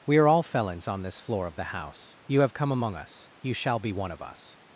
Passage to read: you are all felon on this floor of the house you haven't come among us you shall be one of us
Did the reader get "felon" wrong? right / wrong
wrong